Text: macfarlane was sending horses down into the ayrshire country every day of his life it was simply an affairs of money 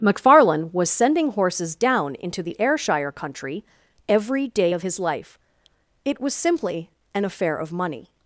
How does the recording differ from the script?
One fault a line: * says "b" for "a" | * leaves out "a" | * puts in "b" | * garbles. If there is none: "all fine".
* says "affair" for "affairs"